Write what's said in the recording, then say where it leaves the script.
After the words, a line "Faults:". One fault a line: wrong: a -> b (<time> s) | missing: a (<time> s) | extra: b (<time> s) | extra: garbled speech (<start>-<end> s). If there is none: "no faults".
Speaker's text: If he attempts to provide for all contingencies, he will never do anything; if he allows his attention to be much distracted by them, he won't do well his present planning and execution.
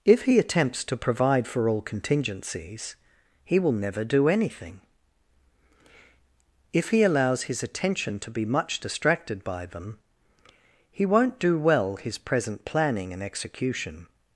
If he attempts to provide for all contingencies, he will never do anything; if he allows his attention to be much distracted by them, he won't do well his present planning and execution.
Faults:
no faults